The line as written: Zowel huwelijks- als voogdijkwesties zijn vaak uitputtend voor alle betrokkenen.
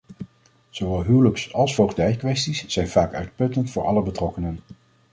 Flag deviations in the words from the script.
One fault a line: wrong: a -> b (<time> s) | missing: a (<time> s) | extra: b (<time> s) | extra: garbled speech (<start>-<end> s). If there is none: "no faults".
no faults